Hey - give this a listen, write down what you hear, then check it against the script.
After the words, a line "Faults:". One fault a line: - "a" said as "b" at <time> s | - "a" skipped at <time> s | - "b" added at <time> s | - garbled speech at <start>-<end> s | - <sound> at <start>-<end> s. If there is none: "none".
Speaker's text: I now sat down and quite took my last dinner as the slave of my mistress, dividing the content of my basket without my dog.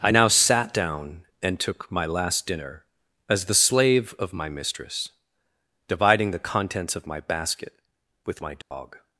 I now sat down and took my last dinner as the slave of my mistress, dividing the contents of my basket with my dog.
Faults:
- "quite" skipped at 1.6 s
- "content" said as "contents" at 6.4 s
- "without" said as "with" at 8.2 s
- dropout at 8.6-8.7 s